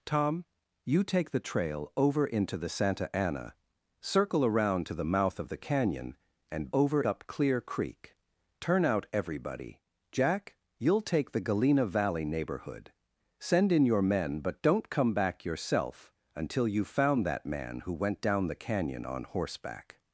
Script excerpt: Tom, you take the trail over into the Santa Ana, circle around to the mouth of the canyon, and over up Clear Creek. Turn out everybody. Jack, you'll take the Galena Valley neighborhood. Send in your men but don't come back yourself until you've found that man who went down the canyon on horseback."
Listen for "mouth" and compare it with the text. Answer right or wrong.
right